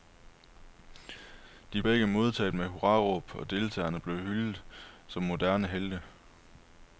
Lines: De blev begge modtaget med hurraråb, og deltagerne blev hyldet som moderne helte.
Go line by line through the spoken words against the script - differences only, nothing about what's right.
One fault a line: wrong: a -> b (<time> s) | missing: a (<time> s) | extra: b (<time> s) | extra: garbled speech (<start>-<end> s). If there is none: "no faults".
missing: blev (1.8 s)